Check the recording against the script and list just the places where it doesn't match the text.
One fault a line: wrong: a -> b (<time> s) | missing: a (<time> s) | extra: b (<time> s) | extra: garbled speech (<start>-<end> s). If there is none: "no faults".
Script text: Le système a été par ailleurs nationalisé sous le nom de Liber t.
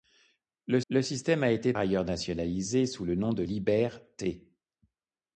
extra: le (0.9 s)
missing: par (1.7 s)